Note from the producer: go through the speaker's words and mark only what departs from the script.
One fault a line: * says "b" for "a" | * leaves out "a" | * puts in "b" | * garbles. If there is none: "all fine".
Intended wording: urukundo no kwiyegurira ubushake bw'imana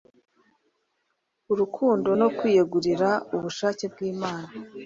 all fine